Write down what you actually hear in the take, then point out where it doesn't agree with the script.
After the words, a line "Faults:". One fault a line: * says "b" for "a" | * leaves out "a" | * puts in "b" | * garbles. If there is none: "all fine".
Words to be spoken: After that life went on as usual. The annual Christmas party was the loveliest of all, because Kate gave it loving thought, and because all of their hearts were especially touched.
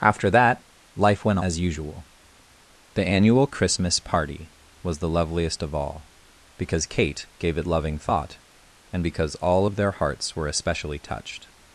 After that life went as usual. The annual Christmas party was the loveliest of all, because Kate gave it loving thought, and because all of their hearts were especially touched.
Faults:
* leaves out "on"